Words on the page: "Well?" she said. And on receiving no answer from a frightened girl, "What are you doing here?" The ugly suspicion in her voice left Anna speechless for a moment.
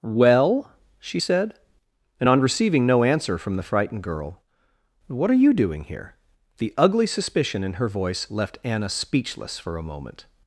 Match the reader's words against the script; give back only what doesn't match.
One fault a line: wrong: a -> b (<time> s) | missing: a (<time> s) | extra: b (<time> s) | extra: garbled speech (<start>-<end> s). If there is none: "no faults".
wrong: a -> the (3.6 s)